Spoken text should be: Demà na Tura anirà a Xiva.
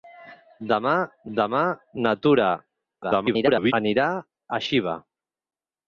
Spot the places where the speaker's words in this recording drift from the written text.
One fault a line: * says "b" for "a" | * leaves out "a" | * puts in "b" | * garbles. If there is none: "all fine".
* puts in "demà"
* garbles